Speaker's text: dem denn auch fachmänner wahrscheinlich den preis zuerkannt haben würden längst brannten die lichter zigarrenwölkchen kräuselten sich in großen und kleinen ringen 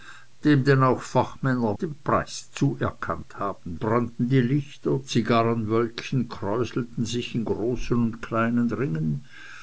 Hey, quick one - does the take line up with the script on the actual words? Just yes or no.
no